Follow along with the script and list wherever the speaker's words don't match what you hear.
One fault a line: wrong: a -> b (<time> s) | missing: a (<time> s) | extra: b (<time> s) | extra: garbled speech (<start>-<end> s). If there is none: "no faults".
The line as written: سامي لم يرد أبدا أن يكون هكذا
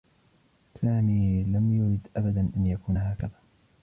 no faults